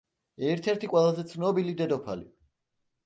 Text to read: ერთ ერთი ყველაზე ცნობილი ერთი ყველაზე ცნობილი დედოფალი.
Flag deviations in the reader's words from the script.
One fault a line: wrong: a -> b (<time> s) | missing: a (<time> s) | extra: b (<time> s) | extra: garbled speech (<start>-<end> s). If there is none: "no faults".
missing: ერთი ყველაზე ცნობილი (1.7 s)